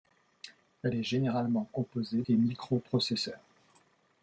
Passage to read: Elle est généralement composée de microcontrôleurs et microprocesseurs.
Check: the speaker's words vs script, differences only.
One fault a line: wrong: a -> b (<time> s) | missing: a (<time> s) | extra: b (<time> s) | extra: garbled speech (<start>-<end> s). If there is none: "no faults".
missing: de microcontrôleurs (2.2 s)